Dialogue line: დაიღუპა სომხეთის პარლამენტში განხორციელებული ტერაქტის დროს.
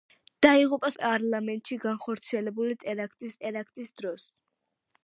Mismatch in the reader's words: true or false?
true